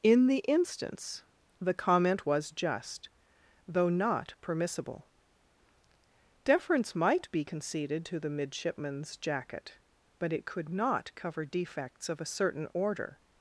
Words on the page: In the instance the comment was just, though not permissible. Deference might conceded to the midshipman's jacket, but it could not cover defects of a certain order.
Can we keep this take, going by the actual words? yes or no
no